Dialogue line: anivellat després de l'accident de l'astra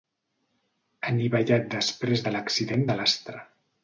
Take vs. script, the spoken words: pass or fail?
pass